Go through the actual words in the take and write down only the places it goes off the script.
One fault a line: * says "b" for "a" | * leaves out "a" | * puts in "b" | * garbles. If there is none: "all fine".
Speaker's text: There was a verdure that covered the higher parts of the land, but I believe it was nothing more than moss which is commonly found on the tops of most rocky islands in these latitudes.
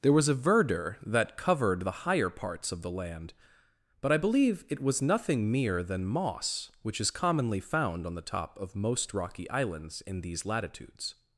* says "mere" for "more"
* says "top" for "tops"